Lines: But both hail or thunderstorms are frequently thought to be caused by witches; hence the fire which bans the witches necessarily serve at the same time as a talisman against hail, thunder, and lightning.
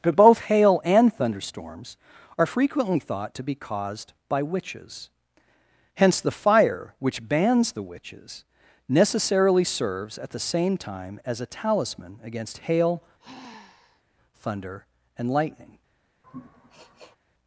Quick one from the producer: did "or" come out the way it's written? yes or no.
no